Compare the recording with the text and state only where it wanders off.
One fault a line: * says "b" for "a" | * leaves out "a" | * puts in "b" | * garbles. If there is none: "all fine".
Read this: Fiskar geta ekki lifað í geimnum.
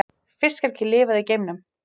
* leaves out "geta"